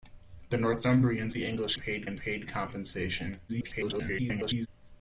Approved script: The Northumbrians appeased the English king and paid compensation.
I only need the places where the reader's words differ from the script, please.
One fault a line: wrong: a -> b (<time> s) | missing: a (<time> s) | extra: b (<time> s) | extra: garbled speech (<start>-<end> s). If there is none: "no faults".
missing: appeased (1.4 s)
wrong: king -> paid (1.8 s)
extra: garbled speech (3.5-4.7 s)